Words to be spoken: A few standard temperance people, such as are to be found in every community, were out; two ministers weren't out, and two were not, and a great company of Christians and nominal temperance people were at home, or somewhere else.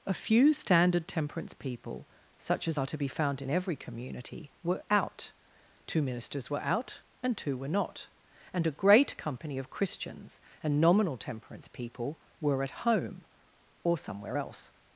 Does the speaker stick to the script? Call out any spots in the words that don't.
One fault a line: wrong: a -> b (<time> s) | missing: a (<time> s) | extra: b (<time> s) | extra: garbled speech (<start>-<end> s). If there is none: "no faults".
wrong: weren't -> were (6.5 s)